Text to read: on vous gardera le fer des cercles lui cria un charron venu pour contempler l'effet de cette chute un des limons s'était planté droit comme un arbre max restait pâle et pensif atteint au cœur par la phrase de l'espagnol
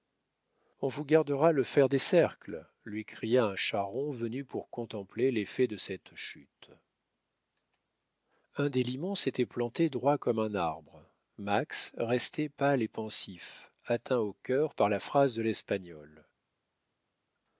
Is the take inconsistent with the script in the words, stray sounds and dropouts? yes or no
no